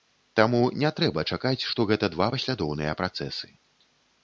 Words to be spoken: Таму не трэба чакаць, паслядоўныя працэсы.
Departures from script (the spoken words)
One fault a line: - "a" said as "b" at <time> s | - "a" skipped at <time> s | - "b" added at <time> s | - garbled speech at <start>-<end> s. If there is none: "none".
- "што гэта два" added at 1.7 s